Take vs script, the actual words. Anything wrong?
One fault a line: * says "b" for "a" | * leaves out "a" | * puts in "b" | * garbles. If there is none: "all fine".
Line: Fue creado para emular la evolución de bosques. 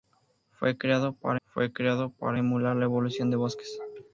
* puts in "fue creado para"